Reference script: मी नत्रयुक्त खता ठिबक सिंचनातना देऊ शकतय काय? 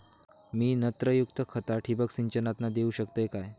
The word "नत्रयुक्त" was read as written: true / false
true